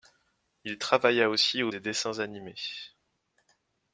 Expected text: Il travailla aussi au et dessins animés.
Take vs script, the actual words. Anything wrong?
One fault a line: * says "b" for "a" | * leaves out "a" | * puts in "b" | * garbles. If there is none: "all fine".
all fine